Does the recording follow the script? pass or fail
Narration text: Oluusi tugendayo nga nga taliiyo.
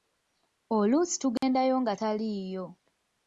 fail